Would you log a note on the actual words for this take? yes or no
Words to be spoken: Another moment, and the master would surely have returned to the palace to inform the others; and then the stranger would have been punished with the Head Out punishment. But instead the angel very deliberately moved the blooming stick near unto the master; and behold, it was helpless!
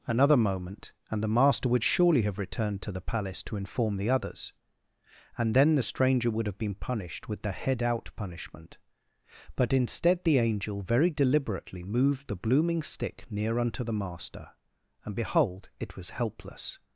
no